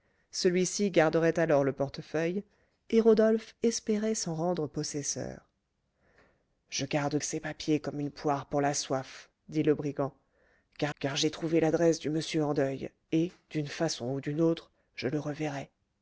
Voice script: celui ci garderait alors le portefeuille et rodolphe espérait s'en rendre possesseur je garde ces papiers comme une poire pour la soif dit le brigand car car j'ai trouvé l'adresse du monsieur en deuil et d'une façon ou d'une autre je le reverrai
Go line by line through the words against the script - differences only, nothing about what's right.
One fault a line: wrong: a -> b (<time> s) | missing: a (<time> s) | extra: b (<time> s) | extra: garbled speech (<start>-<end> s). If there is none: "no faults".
no faults